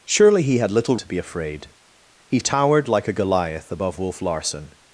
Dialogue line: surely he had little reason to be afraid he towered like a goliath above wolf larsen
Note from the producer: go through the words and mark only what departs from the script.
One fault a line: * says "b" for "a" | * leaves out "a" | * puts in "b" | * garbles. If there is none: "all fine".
* leaves out "reason"